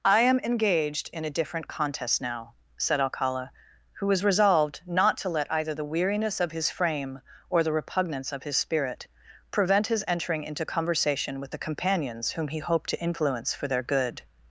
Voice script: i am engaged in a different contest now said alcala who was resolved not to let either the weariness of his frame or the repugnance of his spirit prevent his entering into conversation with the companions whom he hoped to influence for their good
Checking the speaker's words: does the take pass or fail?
pass